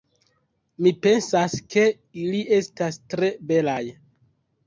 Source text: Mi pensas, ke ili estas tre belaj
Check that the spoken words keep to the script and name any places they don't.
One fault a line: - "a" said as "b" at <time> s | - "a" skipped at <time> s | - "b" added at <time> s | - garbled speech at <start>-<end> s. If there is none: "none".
none